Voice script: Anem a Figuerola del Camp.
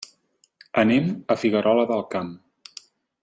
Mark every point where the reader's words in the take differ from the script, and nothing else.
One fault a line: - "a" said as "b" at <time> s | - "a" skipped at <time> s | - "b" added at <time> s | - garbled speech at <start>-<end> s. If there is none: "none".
none